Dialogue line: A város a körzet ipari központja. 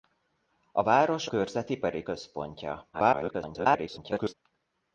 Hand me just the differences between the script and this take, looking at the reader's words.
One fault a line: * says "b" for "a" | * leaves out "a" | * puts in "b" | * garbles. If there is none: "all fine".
* leaves out "a"
* garbles